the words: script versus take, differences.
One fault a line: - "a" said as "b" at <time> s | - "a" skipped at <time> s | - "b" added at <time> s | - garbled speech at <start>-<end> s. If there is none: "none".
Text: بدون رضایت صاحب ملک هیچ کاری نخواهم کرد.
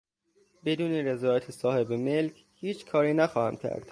none